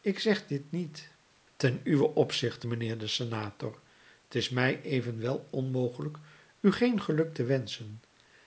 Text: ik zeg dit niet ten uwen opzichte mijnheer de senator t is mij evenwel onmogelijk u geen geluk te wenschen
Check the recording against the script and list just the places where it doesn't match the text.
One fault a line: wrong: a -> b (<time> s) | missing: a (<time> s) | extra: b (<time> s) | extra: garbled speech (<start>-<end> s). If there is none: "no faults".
no faults